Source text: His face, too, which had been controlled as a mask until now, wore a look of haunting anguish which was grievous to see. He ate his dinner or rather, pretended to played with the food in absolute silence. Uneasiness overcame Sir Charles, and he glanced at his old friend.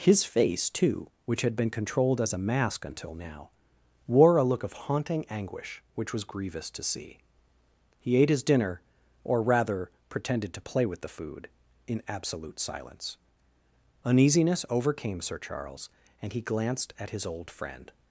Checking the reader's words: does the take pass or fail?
fail